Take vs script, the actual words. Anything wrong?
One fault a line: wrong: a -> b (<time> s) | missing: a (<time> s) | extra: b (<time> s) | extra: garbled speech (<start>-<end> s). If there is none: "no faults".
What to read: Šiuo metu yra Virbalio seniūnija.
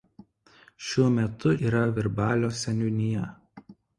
no faults